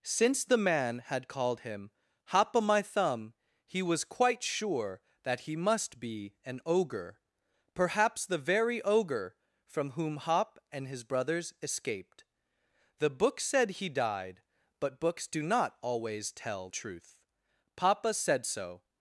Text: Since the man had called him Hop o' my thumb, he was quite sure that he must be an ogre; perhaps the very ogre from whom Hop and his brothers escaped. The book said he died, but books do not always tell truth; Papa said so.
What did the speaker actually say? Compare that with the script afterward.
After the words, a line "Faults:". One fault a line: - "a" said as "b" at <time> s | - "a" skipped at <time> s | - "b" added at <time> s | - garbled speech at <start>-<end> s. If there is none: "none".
Since the man had called him Hop o' my thumb, he was quite sure that he must be an ogre; perhaps the very ogre from whom Hop and his brothers escaped. The book said he died, but books do not always tell truth; Papa said so.
Faults:
none